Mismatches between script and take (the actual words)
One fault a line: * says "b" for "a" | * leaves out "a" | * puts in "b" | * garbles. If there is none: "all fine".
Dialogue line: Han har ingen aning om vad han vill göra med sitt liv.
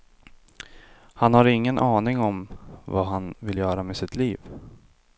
all fine